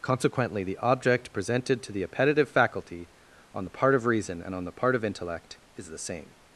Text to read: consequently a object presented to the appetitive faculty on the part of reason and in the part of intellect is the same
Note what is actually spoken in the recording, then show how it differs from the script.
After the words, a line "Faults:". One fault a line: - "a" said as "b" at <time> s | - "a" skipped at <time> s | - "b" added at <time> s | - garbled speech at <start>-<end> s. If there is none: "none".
consequently the object presented to the appetitive faculty on the part of reason and on the part of intellect is the same
Faults:
- "a" said as "the" at 0.6 s
- "in" said as "on" at 4.5 s